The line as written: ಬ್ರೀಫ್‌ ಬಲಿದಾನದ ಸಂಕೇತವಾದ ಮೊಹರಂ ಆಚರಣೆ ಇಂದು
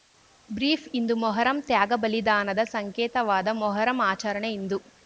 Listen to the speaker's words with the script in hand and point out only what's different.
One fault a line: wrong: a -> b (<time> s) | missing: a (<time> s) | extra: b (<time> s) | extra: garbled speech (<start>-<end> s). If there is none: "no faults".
extra: ಇಂದು ಮೊಹರಂ ತ್ಯಾಗ (0.9 s)